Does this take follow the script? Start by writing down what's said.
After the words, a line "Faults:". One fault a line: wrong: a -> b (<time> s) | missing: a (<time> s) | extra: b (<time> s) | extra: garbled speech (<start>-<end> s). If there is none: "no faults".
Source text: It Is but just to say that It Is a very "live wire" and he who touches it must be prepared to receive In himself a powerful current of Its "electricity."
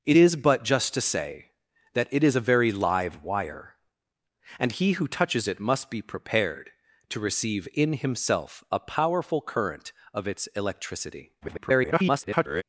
It Is but just to say that It Is a very "live wire" and he who touches it must be prepared to receive In himself a powerful current of Its "electricity." [garbled]
Faults:
extra: garbled speech (11.4-12.6 s)